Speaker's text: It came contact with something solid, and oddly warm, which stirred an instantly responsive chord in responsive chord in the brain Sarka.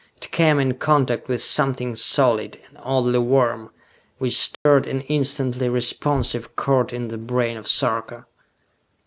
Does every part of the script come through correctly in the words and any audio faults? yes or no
no